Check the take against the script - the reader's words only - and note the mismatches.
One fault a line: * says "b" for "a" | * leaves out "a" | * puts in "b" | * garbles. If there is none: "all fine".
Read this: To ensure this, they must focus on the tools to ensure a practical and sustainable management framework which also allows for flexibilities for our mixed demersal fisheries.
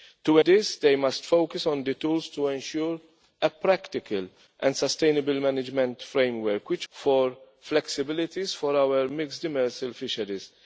* leaves out "ensure"
* leaves out "also allows"